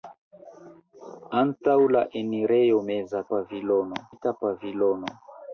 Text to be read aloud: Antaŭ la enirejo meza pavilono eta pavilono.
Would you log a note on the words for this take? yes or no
no